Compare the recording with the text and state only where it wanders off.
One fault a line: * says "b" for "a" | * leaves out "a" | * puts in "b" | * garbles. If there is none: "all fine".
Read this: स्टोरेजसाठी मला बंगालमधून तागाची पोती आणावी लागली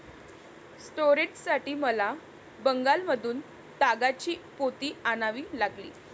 all fine